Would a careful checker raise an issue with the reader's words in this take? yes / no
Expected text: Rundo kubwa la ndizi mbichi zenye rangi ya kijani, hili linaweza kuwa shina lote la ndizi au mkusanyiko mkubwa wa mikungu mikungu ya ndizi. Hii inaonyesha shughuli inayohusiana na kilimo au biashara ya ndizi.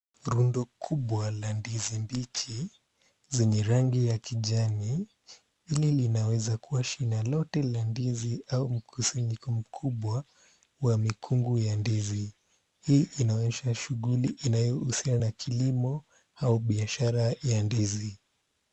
yes